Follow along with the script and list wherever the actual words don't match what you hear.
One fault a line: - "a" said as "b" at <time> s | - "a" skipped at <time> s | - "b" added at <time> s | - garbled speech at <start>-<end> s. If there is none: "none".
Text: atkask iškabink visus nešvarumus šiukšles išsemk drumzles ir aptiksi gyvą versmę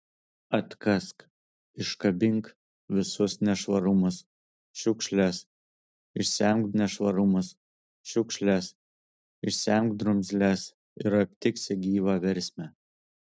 - "nešvarumus šiukšles išsemk" added at 6.8 s